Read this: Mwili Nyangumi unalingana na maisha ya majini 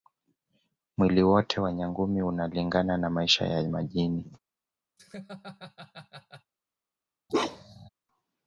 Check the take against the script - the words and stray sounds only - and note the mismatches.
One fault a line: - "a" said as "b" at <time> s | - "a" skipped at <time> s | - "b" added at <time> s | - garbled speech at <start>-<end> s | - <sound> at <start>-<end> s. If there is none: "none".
- "wote wa" added at 1.2 s
- laugh at 5.0-6.5 s
- bark at 7.3-7.9 s